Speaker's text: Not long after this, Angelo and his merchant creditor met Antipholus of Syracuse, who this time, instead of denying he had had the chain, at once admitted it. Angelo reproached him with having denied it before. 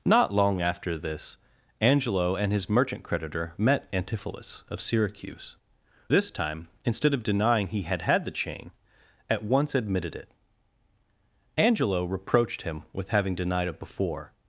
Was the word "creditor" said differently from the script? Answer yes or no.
no